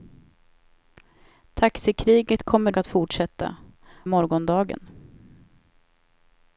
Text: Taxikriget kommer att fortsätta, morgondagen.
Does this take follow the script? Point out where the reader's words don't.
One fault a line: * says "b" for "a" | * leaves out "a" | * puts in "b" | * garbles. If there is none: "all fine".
all fine